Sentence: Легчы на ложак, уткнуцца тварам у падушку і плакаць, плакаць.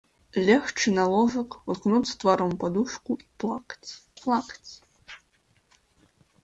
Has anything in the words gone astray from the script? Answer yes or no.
no